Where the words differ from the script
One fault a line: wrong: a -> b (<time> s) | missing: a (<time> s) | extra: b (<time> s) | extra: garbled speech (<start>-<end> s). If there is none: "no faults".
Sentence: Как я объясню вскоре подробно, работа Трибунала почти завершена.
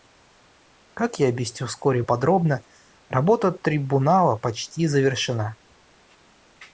no faults